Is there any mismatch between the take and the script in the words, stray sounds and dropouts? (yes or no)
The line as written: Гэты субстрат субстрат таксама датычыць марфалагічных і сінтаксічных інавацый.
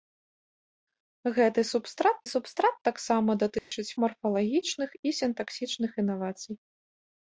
yes